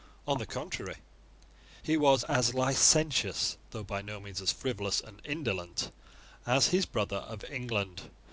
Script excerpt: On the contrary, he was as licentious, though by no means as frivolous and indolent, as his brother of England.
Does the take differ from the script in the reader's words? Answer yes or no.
no